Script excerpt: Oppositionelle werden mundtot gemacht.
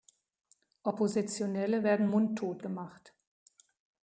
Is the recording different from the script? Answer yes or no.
no